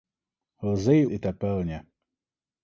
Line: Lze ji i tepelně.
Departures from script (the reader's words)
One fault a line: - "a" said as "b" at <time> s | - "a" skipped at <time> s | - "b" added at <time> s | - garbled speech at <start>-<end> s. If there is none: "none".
none